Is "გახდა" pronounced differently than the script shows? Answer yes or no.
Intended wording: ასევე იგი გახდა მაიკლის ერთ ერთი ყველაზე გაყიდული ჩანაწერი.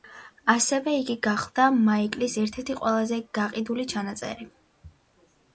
no